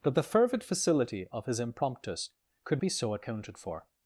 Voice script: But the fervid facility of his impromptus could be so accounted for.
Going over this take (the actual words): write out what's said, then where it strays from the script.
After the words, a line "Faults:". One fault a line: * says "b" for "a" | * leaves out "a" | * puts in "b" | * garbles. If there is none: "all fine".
But the fervid facility of his impromptus could be so accounted for.
Faults:
all fine